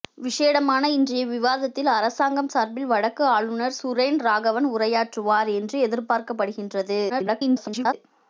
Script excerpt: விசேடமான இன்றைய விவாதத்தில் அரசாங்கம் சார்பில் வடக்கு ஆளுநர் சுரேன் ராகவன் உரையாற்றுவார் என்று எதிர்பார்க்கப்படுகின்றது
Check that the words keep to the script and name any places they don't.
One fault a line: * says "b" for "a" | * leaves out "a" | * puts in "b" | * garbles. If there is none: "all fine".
* garbles